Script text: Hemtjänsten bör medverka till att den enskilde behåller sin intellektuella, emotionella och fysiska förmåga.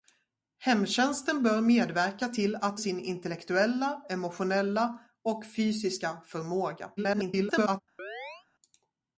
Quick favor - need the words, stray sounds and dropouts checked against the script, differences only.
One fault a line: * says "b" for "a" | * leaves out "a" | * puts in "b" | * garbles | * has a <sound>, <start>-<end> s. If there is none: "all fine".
* leaves out "den enskilde behåller"
* garbles
* has a chirp, 8.0-8.5 s